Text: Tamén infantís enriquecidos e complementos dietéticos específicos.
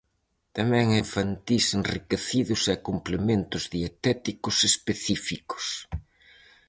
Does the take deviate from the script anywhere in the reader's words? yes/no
no